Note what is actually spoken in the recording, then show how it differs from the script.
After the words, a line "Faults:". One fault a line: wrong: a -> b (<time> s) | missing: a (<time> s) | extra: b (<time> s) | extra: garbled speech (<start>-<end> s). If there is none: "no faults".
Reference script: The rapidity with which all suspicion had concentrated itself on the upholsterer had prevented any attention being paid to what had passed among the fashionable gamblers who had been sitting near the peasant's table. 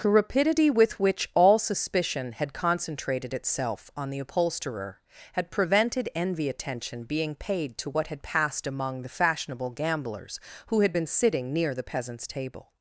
The rapidity with which all suspicion had concentrated itself on the upholsterer had prevented envy attention being paid to what had passed among the fashionable gamblers who had been sitting near the peasant's table.
Faults:
wrong: any -> envy (6.2 s)